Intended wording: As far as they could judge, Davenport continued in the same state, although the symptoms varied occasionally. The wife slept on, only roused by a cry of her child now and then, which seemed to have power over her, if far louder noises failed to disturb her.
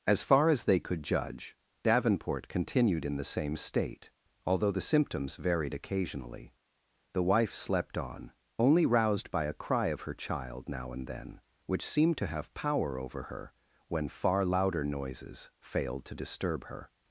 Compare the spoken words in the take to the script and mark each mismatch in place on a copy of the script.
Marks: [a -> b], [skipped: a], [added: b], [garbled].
As far as they could judge, Davenport continued in the same state, although the symptoms varied occasionally. The wife slept on, only roused by a cry of her child now and then, which seemed to have power over her, [if -> when] far louder noises failed to disturb her.